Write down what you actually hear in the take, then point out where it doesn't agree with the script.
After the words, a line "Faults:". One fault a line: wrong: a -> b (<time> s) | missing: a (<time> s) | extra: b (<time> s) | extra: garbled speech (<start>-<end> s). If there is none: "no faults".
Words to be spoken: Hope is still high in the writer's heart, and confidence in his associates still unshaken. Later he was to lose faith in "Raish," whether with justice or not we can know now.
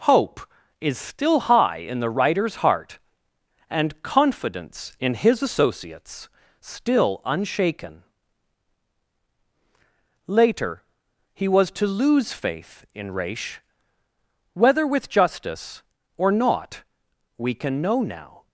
Hope is still high in the writer's heart, and confidence in his associates still unshaken. Later he was to lose faith in "Raish," whether with justice or not we can know now.
Faults:
no faults